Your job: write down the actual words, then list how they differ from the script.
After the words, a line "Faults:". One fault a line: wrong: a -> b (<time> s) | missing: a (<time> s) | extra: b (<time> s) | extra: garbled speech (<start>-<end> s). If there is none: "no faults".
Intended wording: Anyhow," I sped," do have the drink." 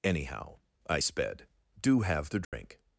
Anyhow," I sped," do have the drink."
Faults:
no faults